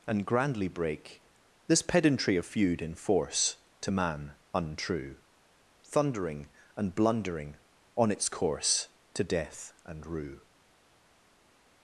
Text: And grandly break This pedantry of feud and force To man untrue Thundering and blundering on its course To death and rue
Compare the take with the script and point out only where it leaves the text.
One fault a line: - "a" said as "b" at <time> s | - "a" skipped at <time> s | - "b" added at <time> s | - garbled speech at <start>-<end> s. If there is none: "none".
- "and" said as "in" at 2.8 s